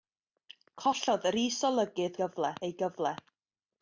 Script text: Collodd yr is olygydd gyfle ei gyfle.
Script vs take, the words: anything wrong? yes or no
no